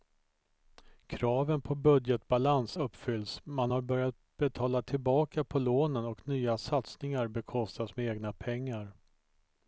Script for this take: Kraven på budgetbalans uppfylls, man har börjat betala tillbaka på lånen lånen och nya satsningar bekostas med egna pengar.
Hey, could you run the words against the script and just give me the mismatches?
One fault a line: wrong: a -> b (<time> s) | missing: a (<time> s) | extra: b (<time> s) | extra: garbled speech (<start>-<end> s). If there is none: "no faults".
missing: lånen (6.1 s)